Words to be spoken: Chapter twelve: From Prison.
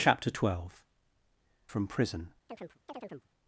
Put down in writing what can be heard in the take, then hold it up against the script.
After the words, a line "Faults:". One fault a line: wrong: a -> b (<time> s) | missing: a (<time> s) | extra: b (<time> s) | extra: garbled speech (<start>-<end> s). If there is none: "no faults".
Chapter twelve: From Prison.
Faults:
no faults